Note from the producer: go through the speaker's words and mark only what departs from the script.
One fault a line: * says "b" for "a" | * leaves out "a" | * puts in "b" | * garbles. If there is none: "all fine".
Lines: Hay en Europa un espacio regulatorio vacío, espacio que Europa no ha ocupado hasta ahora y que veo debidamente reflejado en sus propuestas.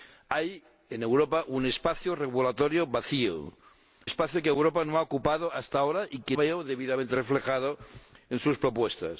all fine